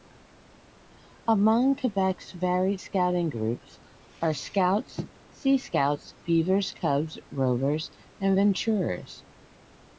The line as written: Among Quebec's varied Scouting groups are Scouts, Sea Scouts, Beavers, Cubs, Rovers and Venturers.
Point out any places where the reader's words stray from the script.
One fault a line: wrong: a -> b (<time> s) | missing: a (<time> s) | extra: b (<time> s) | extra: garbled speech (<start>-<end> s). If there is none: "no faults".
no faults